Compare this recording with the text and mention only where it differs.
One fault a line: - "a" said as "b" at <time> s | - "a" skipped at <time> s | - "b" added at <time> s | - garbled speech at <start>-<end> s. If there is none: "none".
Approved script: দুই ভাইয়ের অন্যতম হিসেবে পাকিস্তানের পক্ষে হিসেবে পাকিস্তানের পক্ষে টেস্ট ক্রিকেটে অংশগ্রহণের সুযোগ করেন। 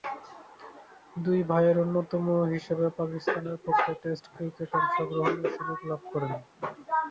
- "হিসেবে পাকিস্তানের পক্ষে" skipped at 3.9 s
- "লাভ" added at 5.9 s